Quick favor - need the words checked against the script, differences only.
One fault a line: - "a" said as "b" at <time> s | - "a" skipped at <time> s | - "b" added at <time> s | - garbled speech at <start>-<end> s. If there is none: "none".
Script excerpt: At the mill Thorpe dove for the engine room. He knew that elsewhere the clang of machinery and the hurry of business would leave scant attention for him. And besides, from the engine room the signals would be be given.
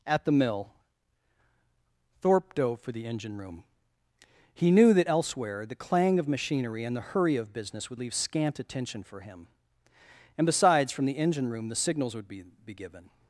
none